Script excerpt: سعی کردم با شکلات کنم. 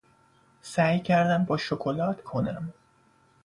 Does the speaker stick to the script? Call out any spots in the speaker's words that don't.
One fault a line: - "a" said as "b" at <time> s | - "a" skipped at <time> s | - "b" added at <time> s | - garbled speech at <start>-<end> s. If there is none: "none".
none